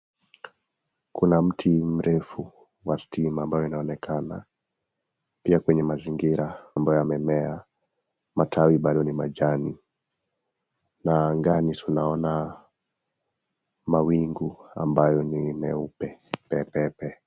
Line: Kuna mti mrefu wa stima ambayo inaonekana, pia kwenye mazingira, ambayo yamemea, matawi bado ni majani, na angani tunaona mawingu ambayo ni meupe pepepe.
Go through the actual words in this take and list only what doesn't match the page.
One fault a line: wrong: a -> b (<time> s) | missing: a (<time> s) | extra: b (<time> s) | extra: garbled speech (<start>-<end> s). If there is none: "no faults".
no faults